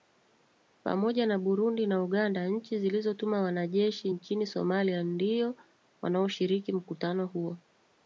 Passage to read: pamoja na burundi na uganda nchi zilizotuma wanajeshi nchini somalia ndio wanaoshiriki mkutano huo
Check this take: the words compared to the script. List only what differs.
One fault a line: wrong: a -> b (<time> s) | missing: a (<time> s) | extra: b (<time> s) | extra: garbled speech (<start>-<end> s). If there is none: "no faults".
no faults